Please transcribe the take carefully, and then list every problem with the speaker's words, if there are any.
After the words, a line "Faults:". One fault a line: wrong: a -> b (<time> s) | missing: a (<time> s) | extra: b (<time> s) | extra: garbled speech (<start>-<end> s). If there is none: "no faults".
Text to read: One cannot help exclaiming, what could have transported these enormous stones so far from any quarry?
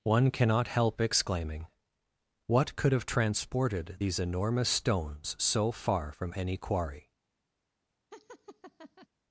One cannot help exclaiming, what could have transported these enormous stones so far from any quarry?
Faults:
no faults